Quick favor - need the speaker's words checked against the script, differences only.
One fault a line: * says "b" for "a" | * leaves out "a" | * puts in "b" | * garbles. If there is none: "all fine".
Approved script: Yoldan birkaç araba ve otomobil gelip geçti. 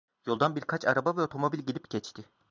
all fine